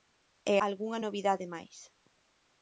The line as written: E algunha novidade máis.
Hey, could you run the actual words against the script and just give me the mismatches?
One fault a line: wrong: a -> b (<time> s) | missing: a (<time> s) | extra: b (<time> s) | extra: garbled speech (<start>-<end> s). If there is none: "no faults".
no faults